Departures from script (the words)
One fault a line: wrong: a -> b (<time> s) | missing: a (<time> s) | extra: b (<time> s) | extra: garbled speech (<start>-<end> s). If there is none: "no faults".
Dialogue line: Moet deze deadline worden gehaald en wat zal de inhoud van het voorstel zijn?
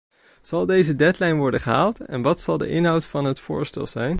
wrong: Moet -> Zal (0.4 s)